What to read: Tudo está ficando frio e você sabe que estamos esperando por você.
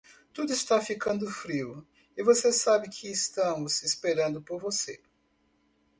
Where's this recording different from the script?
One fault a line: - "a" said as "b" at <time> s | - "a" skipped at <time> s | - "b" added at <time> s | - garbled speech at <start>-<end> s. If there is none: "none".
none